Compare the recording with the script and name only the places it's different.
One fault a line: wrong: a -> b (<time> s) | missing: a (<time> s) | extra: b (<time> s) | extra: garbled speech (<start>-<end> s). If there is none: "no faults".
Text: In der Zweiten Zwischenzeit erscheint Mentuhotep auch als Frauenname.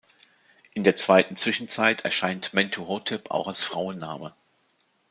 no faults